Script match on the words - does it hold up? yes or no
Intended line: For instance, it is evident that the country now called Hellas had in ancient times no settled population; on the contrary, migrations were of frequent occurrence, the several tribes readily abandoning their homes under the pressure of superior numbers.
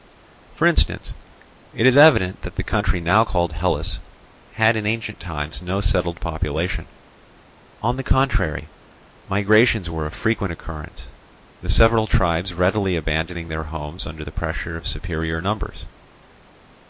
yes